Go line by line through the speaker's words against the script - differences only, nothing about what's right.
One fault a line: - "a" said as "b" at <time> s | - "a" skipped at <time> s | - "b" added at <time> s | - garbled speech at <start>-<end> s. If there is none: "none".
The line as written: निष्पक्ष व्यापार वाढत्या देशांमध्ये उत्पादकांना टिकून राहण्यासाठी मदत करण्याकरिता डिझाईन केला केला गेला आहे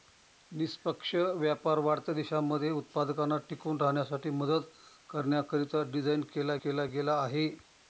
none